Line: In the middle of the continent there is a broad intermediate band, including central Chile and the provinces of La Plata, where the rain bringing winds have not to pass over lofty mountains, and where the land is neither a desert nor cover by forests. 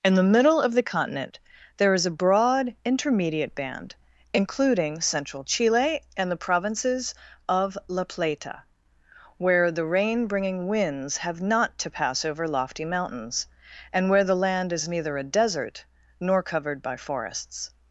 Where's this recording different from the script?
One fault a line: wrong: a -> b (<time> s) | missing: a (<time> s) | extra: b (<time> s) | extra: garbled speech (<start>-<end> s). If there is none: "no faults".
wrong: cover -> covered (16.4 s)